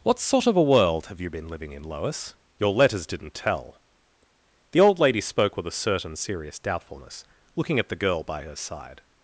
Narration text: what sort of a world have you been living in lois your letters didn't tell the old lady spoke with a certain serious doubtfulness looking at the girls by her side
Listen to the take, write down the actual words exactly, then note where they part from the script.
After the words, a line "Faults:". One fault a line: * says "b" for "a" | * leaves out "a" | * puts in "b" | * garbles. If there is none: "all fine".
what sort of a world have you been living in lois your letters didn't tell the old lady spoke with a certain serious doubtfulness looking at the girl by her side
Faults:
* says "girl" for "girls"